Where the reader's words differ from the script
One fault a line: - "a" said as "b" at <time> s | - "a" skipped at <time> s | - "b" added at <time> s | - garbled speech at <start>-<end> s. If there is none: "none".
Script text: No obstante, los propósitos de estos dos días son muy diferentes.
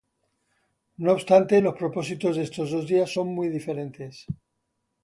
none